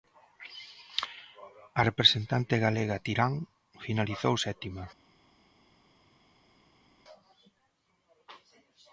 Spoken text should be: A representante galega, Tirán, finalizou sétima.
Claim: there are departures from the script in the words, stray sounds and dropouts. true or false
false